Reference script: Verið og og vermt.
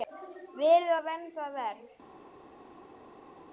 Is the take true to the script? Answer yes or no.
no